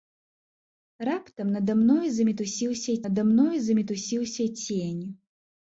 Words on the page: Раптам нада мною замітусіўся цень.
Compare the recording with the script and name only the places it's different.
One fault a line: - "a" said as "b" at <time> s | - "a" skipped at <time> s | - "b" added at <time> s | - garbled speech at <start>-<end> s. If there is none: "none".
- "нада мною замітусіўся" added at 3.1 s